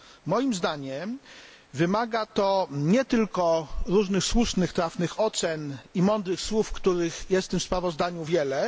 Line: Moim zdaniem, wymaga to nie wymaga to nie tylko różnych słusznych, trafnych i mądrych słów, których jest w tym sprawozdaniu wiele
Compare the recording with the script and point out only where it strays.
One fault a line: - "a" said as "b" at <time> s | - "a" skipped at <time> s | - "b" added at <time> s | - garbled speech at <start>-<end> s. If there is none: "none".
- "wymaga to nie" skipped at 3.0 s
- "ocen" added at 5.2 s